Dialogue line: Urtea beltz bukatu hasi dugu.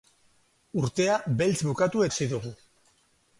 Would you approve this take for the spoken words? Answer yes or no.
yes